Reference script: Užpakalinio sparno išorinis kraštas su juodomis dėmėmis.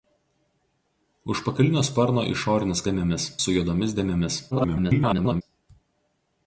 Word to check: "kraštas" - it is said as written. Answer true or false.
false